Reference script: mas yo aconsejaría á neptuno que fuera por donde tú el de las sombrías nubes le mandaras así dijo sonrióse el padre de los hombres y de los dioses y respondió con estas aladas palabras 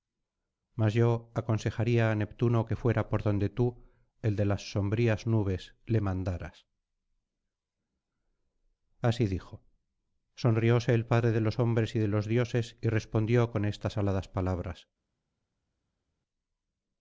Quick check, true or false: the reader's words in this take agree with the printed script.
true